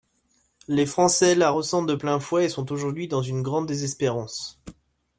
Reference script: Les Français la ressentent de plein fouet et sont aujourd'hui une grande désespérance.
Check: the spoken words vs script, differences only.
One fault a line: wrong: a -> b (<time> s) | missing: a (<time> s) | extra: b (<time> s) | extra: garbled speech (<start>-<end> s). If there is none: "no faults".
extra: dans (3.1 s)